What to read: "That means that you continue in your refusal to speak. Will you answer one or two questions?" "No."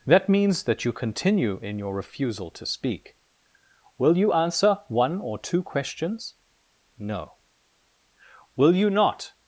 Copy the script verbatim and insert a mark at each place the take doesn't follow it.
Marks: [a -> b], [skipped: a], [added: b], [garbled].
"That means that you continue in your refusal to speak. Will you answer one or two questions?" "No." [added: Will you not]